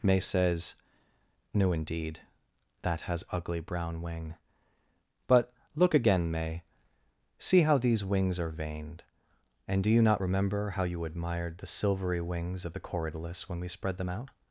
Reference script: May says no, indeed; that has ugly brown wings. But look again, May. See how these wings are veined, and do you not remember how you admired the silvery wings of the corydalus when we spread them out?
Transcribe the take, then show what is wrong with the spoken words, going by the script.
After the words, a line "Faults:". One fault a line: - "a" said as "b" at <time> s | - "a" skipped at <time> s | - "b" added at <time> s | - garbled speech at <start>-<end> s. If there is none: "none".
May says no, indeed; that has ugly brown wing. But look again, May. See how these wings are veined, and do you not remember how you admired the silvery wings of the corydalus when we spread them out?
Faults:
- "wings" said as "wing" at 4.0 s